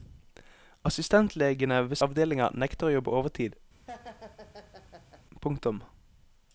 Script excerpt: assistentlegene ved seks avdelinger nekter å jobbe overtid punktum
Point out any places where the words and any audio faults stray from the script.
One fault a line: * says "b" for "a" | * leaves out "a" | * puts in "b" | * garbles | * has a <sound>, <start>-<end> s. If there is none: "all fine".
* leaves out "seks"
* has a laugh, 3.9-5.3 s